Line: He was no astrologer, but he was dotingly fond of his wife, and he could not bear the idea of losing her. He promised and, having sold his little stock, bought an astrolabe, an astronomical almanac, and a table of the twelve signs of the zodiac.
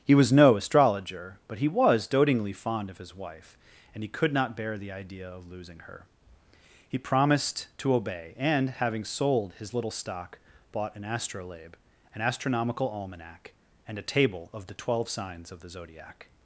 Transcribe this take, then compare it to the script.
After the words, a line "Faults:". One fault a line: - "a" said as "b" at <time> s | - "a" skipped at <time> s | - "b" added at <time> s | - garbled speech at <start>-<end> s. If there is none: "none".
He was no astrologer, but he was dotingly fond of his wife, and he could not bear the idea of losing her. He promised to obey, and, having sold his little stock, bought an astrolabe, an astronomical almanac, and a table of the twelve signs of the zodiac.
Faults:
- "to obey" added at 7.8 s